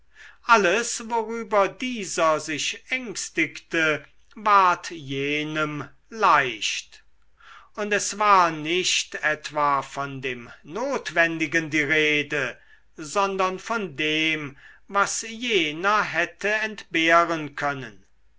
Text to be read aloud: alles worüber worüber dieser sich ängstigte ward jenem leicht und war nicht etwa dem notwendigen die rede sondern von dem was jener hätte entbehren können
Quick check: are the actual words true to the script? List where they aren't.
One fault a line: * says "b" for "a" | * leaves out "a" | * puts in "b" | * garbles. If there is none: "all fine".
* leaves out "worüber"
* puts in "es"
* puts in "von"